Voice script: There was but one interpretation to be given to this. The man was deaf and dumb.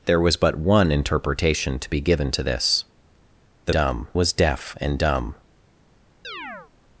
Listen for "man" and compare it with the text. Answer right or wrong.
wrong